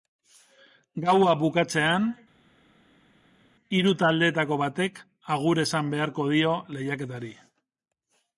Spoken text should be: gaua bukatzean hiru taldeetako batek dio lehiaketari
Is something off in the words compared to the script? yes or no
yes